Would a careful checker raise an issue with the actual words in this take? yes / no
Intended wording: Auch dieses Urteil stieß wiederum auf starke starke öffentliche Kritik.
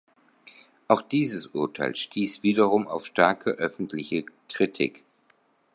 yes